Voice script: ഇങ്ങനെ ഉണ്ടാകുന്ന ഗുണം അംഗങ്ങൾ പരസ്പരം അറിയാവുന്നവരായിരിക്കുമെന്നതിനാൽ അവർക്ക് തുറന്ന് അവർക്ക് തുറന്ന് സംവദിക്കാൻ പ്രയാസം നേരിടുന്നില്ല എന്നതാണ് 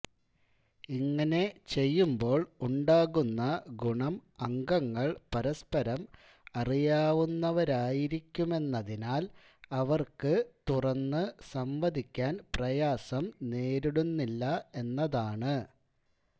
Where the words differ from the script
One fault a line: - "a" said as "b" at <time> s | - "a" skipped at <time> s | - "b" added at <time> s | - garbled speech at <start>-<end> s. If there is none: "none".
- "ചെയ്യുമ്പോൾ" added at 1.7 s
- "അവർക്ക് തുറന്ന്" skipped at 11.2 s